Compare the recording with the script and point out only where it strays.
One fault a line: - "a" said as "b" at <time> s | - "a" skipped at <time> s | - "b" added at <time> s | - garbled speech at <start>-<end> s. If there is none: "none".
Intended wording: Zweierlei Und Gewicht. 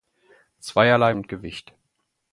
none